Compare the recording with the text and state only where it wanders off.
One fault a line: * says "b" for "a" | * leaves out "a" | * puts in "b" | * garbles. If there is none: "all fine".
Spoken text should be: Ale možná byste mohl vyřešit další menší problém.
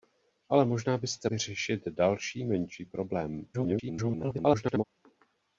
* leaves out "mohl"
* garbles